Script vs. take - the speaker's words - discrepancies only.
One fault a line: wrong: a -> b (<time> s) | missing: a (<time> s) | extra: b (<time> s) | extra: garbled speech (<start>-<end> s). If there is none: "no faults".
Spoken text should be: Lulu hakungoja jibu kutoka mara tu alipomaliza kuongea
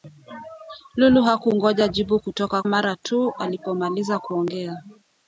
no faults